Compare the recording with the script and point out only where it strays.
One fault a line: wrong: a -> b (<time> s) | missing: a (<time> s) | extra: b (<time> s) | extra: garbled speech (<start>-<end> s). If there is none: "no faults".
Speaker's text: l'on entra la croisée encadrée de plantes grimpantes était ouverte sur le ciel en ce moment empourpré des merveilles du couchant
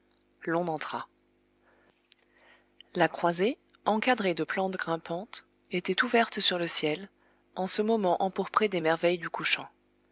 no faults